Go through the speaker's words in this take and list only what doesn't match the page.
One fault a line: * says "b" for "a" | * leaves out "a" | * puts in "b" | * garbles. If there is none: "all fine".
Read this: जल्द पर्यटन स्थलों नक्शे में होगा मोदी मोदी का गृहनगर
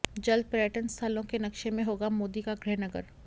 * puts in "के"
* leaves out "मोदी"